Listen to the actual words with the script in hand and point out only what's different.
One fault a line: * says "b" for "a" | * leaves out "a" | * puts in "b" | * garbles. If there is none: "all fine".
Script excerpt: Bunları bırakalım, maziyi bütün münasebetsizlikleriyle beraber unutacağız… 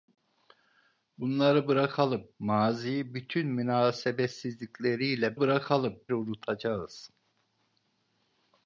* says "bırakalım" for "beraber"